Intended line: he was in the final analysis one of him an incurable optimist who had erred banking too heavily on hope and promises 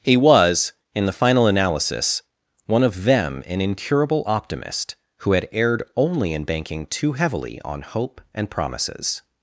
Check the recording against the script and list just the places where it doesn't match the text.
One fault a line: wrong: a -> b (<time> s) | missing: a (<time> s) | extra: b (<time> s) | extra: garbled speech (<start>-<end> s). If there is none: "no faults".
wrong: him -> them (3.0 s)
extra: only in (6.0 s)